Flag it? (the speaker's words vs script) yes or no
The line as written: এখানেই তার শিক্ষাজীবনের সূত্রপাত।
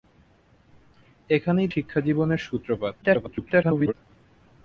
yes